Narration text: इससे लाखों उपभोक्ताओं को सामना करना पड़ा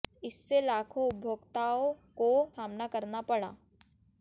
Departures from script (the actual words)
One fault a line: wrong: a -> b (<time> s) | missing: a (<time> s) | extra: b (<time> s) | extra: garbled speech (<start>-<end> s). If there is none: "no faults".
no faults